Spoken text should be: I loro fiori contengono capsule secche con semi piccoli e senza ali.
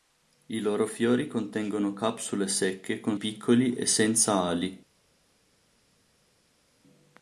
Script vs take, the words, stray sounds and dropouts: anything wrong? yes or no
yes